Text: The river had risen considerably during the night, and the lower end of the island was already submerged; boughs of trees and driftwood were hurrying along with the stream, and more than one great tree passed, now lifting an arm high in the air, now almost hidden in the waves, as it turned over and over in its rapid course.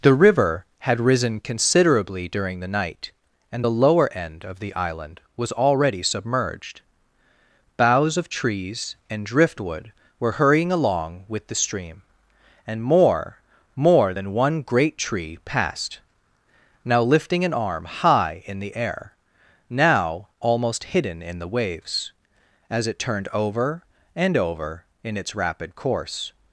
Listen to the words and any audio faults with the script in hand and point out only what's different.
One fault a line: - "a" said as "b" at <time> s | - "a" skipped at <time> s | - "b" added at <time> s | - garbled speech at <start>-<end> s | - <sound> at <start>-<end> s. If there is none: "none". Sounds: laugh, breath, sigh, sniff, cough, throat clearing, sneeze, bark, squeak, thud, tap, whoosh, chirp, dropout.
- "more" added at 13.7 s